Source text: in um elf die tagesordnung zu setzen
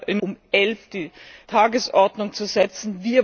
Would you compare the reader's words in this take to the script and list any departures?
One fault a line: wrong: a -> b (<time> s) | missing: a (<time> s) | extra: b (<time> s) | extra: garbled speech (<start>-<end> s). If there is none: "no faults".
no faults